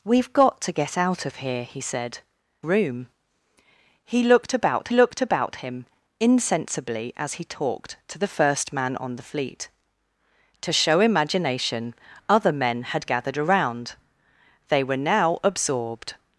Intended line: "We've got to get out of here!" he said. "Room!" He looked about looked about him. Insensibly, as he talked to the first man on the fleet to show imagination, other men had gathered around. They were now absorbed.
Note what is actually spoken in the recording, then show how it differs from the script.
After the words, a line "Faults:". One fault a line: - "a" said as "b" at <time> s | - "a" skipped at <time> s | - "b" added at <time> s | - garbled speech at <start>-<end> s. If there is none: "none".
"We've got to get out of here!" he said. "Room!" He looked about looked about him. Insensibly, as he talked to the first man on the fleet to show imagination, other men had gathered around. They were now absorbed.
Faults:
none